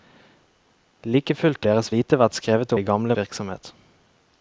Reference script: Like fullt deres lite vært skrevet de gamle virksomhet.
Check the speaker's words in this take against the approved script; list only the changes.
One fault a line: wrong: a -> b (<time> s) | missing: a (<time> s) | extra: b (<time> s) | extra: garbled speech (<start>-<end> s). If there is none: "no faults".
no faults